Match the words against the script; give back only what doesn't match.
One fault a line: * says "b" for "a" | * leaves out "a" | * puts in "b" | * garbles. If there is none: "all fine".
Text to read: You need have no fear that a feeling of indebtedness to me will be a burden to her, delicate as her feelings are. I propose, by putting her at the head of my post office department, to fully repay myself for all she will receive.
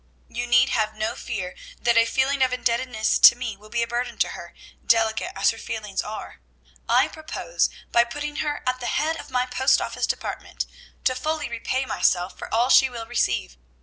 all fine